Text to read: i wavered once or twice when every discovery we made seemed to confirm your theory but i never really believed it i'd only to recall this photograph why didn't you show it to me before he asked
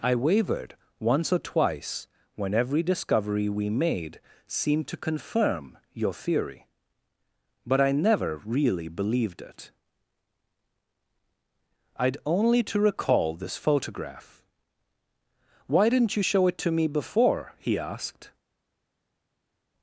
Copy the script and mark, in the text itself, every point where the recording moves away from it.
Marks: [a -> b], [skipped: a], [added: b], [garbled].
i wavered once or twice when every discovery we made seemed to confirm your theory but i never really believed it i'd only to recall this photograph why didn't you show it to me before he asked